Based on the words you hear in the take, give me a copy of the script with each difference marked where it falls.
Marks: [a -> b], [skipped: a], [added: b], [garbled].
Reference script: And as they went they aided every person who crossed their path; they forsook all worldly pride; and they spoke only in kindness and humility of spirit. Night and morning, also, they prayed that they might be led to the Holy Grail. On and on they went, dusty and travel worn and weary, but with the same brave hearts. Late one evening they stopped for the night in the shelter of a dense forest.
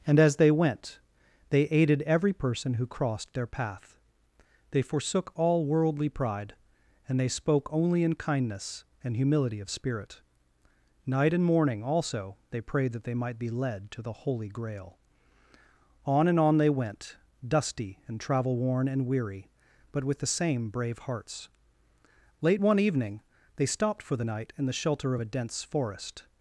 And as they went they aided every person who crossed their path; they forsook all worldly pride; and they spoke only in kindness and humility of spirit. Night and morning, also, they prayed that they might be led to the Holy Grail. On and on they went, dusty and travel worn and weary, but with the same brave hearts. Late one evening they stopped for the night in the shelter of a dense forest.